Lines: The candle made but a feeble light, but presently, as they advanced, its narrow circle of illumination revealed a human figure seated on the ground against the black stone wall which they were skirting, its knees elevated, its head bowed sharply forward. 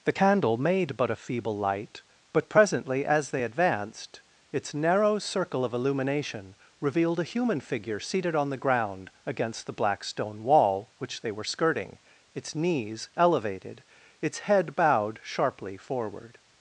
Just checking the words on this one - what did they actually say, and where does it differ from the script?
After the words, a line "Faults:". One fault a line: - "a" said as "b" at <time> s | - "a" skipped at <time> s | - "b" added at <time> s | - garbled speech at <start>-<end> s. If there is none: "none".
The candle made but a feeble light, but presently, as they advanced, its narrow circle of illumination revealed a human figure seated on the ground against the black stone wall which they were skirting, its knees elevated, its head bowed sharply forward.
Faults:
none